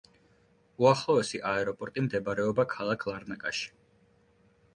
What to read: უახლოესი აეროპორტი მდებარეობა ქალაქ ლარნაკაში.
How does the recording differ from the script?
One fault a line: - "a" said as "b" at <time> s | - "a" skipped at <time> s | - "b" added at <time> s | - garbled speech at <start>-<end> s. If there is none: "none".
none